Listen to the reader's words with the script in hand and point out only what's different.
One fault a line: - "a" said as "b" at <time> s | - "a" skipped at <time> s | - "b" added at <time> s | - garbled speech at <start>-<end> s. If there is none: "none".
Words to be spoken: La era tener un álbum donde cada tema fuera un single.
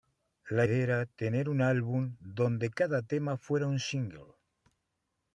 none